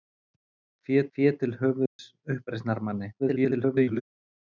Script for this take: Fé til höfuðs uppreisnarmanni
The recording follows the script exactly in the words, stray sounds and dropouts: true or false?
false